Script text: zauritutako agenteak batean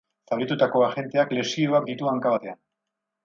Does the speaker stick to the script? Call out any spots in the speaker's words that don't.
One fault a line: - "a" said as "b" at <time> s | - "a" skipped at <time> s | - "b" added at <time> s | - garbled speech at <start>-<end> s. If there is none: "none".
- "lesioak ditu hanka" added at 1.4 s